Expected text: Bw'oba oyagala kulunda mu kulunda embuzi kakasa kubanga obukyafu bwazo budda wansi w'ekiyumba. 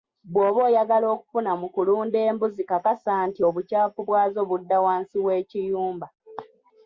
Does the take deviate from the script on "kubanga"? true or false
true